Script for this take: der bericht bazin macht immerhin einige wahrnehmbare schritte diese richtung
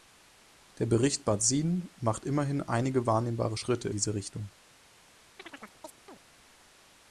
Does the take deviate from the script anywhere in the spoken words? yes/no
no